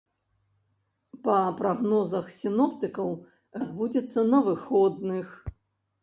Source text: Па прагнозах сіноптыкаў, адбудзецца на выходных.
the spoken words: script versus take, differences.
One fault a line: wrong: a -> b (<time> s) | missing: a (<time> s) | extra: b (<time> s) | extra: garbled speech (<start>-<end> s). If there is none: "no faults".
no faults